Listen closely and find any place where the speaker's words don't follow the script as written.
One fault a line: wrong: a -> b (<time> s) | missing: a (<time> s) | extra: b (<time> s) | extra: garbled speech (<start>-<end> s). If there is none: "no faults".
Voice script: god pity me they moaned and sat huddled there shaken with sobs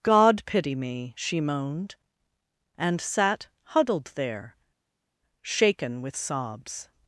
wrong: they -> she (1.2 s)